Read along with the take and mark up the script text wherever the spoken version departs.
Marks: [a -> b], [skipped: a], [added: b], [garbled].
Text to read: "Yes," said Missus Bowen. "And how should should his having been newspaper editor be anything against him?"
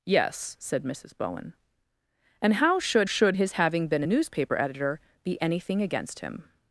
"Yes," said Missus Bowen. "And how should should his having been newspaper editor be anything against him?"